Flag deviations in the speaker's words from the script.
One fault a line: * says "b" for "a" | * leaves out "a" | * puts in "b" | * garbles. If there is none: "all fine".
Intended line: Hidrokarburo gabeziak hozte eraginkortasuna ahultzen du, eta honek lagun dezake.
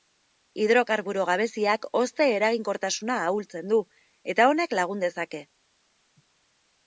all fine